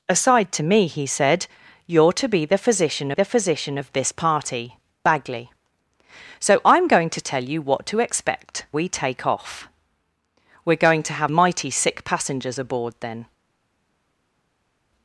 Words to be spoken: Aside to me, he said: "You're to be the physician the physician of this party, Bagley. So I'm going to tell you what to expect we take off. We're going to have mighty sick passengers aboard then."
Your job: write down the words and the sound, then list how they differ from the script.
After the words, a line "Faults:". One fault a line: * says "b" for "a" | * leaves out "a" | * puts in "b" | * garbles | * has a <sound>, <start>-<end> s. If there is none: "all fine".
Aside to me, he said: "You're to be the physician the physician of this party, Bagley. So I'm going to tell you what to expect we take off. We're going to have mighty sick passengers aboard then."
Faults:
all fine